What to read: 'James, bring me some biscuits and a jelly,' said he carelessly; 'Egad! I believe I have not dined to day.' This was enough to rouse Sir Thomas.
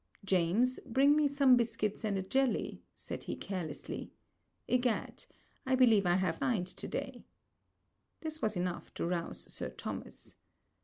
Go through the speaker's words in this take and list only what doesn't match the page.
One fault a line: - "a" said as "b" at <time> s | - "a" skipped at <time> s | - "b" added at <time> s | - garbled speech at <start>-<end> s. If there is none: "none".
- "not" skipped at 6.4 s